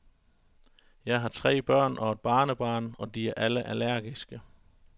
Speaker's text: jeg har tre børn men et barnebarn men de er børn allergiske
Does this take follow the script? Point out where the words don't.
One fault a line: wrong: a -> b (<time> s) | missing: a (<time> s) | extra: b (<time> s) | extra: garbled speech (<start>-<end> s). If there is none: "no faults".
wrong: men -> og (2.0 s)
wrong: men -> og (3.0 s)
wrong: børn -> alle (3.4 s)